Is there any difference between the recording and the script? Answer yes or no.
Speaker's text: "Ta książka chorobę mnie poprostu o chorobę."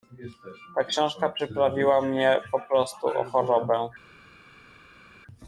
yes